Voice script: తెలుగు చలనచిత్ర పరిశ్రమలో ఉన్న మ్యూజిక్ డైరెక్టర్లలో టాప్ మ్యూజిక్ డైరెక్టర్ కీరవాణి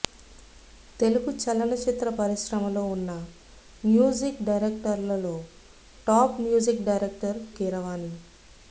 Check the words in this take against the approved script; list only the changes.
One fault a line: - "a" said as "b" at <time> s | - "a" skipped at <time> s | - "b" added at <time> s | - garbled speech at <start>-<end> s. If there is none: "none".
none